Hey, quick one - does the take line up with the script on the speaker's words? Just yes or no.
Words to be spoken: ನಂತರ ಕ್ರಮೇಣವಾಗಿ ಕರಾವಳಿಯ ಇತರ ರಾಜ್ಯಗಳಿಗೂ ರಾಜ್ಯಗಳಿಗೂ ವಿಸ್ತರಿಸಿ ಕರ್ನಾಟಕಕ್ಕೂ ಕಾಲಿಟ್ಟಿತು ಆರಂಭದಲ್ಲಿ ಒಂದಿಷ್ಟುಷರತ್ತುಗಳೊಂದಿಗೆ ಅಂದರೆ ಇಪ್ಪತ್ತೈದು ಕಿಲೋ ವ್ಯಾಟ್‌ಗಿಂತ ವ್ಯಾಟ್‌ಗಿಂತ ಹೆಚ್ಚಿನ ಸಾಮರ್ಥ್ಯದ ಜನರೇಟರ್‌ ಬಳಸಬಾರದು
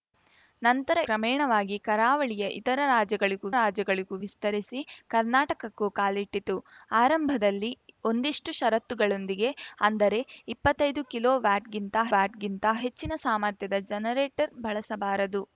yes